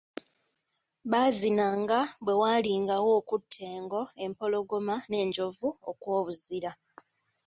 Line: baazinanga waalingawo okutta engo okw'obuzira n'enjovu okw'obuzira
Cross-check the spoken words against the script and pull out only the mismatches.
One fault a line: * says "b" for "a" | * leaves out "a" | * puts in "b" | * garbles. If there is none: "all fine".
* puts in "bwe"
* says "empologoma" for "okw'obuzira"